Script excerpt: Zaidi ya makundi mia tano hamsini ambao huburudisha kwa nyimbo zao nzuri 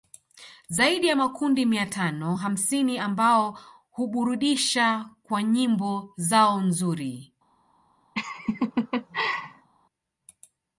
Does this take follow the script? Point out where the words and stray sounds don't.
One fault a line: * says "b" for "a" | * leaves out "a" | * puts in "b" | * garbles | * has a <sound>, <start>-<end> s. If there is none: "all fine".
* has a laugh, 8.2-9.7 s